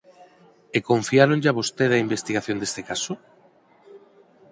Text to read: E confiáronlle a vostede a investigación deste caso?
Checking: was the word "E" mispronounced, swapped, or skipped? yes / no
no